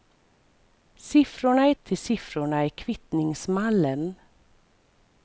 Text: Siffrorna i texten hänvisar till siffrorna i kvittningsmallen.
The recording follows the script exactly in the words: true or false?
false